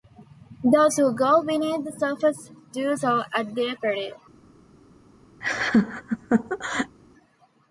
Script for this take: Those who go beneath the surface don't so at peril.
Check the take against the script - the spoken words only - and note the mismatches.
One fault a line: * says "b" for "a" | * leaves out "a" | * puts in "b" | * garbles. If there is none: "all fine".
* says "do" for "don't"
* puts in "their"